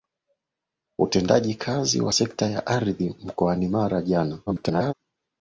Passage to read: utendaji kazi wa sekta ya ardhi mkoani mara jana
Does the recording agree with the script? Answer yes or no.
no